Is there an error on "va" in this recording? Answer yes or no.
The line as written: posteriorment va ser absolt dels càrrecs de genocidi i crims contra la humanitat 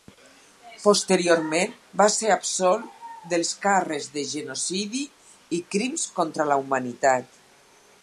no